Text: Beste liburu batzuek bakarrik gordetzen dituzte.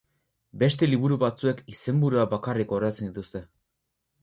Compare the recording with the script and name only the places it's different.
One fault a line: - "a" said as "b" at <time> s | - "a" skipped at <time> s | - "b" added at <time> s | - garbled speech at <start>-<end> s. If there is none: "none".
- "izenburuak" added at 1.8 s